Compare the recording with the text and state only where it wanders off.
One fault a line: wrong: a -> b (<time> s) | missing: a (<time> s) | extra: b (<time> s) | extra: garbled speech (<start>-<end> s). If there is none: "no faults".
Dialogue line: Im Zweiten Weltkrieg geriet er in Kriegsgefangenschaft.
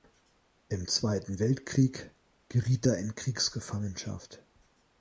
no faults